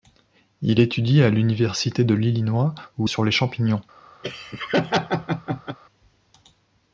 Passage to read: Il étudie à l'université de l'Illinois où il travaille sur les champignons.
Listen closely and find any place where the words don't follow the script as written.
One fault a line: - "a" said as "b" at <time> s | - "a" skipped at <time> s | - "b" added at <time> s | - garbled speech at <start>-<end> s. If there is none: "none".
- "il travaille" skipped at 3.1 s